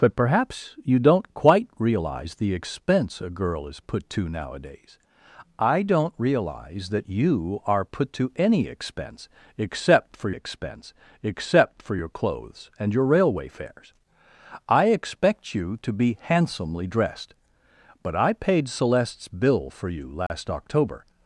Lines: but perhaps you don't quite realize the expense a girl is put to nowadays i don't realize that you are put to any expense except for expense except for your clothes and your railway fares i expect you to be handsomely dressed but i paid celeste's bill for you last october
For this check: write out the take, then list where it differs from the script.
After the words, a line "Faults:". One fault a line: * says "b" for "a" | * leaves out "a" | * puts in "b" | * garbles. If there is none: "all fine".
but perhaps you don't quite realize the expense a girl is put to nowadays i don't realize that you are put to any expense except for expense except for your clothes and your railway fares i expect you to be handsomely dressed but i paid celeste's bill for you last october
Faults:
all fine